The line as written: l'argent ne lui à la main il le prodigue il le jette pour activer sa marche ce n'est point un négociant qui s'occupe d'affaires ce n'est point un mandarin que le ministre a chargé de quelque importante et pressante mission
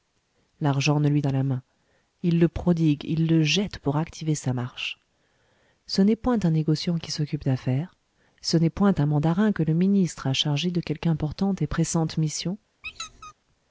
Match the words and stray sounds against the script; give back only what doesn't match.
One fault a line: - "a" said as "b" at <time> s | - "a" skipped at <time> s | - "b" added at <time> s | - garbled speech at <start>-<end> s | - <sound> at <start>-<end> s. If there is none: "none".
- squeak at 12.8-13.3 s